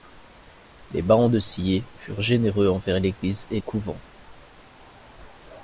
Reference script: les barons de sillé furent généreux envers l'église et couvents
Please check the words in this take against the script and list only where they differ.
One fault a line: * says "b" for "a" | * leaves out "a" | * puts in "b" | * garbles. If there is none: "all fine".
all fine